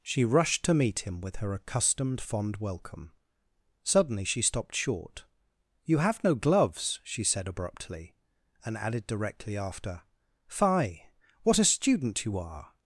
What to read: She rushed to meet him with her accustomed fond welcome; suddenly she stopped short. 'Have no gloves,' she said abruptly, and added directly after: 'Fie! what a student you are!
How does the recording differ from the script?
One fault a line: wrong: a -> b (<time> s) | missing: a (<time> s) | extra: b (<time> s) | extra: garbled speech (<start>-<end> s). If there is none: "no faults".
extra: You (5.8 s)